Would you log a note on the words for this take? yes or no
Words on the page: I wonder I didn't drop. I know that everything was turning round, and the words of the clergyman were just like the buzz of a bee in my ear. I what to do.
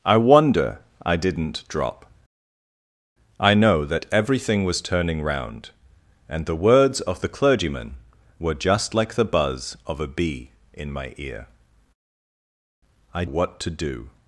no